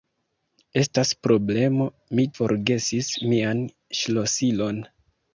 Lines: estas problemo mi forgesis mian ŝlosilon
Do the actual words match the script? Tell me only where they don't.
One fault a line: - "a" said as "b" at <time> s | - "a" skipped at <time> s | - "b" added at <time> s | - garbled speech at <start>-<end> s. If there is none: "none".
none